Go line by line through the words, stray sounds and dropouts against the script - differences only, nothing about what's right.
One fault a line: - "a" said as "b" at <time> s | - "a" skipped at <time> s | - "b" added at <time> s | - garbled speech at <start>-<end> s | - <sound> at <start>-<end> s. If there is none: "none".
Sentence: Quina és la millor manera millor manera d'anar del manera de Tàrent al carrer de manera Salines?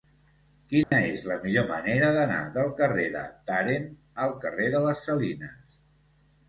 - dropout at 0.8-0.9 s
- "millor manera" skipped at 2.1 s
- "manera" said as "carrer" at 2.8 s
- "manera" said as "les" at 4.9 s